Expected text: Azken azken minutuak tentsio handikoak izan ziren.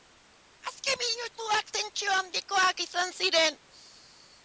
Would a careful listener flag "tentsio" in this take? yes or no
no